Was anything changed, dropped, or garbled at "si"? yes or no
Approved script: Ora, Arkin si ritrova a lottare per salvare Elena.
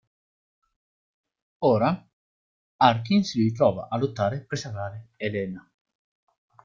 no